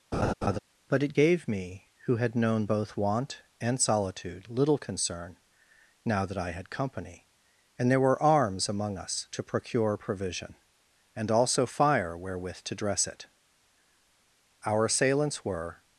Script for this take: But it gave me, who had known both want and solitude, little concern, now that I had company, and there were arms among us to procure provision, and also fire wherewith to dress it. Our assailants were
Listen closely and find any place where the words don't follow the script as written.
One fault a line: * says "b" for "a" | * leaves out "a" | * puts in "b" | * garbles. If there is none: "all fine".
all fine